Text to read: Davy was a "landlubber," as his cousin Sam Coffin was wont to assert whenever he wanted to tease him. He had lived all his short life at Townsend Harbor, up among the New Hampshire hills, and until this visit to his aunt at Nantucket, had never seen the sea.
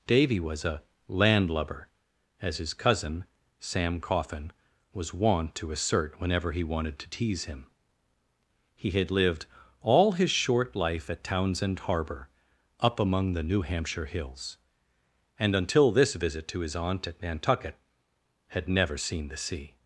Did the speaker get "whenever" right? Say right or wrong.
right